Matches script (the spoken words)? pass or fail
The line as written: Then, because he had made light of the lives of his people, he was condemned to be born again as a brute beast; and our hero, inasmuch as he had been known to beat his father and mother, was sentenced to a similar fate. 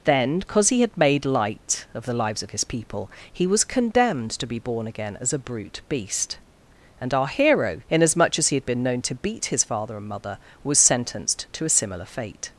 pass